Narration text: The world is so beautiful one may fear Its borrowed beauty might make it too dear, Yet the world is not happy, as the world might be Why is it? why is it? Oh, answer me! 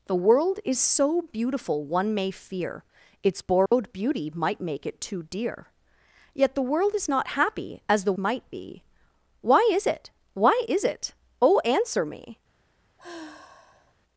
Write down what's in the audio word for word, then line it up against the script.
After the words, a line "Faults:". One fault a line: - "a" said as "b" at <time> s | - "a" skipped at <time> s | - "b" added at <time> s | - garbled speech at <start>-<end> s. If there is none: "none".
The world is so beautiful one may fear Its borrowed beauty might make it too dear, Yet the world is not happy, as the might be Why is it? why is it? Oh, answer me!
Faults:
- "world" skipped at 8.1 s